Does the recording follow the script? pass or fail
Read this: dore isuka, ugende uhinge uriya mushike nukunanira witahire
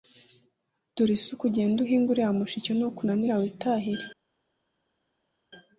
pass